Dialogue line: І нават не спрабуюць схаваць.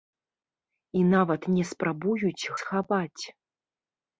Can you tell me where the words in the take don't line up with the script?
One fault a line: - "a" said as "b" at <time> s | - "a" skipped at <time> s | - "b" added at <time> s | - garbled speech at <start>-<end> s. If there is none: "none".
none